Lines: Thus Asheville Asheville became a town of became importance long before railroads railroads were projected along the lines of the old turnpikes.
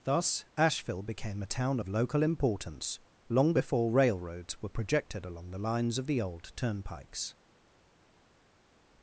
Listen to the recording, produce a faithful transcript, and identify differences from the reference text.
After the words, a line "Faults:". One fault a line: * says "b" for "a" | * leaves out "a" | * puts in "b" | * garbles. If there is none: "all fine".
Thus Asheville became a town of local importance long before railroads were projected along the lines of the old turnpikes.
Faults:
* leaves out "Asheville"
* says "local" for "became"
* leaves out "railroads"